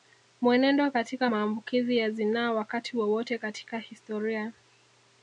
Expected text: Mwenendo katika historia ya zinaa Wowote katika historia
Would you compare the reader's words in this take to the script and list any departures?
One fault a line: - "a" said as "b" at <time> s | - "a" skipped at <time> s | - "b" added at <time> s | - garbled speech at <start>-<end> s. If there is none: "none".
- "historia" said as "maambukizi" at 1.2 s
- "Wakati" added at 2.5 s